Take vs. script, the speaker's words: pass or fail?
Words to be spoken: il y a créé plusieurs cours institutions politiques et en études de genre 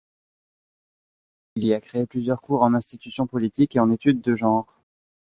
fail